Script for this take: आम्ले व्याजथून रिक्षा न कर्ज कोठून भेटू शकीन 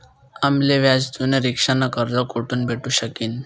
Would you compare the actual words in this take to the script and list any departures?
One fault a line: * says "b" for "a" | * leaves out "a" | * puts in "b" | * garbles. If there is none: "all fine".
all fine